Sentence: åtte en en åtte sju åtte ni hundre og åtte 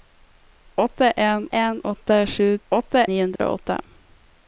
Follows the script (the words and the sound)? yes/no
no